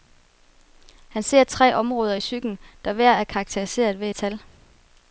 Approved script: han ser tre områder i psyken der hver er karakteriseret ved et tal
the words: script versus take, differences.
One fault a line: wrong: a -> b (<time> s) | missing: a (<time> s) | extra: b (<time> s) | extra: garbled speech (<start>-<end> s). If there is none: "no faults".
no faults